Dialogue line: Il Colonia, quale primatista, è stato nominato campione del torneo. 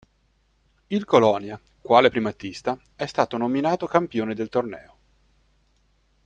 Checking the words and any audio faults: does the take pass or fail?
pass